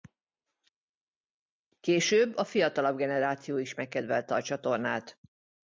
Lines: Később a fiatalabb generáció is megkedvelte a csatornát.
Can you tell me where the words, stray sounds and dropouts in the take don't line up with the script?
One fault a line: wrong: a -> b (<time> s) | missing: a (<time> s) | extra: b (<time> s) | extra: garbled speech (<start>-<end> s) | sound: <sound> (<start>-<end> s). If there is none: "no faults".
no faults